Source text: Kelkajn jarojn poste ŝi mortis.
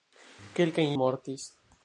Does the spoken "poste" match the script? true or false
false